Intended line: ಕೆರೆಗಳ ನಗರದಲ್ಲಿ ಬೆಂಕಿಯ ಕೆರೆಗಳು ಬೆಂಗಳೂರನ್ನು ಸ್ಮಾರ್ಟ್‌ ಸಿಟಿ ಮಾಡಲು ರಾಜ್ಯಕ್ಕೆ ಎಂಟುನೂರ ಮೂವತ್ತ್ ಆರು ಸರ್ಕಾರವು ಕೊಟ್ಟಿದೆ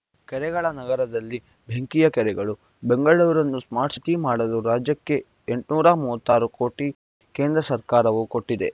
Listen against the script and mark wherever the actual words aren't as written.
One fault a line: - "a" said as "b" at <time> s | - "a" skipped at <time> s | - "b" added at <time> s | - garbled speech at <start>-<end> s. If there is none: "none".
- "ಕೋಟಿ ಕೇಂದ್ರ" added at 6.6 s